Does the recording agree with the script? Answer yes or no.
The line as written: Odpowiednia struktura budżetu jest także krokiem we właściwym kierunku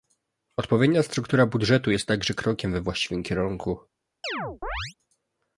yes